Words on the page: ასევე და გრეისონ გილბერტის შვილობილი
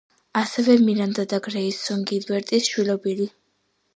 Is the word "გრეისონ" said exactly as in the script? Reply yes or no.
yes